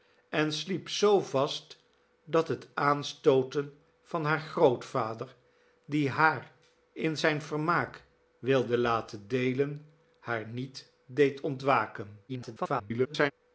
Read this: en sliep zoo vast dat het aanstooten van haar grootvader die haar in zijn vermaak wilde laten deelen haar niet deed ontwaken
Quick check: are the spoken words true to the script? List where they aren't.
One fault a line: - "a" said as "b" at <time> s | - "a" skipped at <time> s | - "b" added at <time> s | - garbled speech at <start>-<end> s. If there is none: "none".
- garbled speech at 12.3-13.3 s